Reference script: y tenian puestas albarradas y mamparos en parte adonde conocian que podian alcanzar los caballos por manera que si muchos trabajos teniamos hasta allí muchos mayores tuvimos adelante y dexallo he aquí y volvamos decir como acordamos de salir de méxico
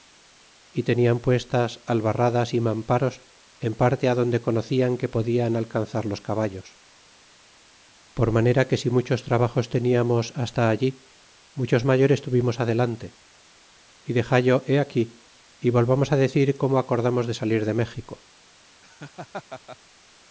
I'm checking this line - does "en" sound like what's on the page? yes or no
yes